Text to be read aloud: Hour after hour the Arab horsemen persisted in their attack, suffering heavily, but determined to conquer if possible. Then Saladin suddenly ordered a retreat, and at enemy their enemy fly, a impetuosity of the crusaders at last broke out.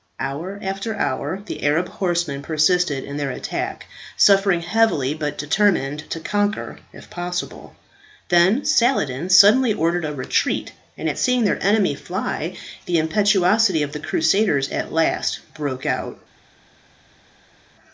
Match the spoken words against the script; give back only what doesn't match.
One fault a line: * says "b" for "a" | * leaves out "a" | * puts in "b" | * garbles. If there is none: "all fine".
* says "seeing" for "enemy"
* says "the" for "a"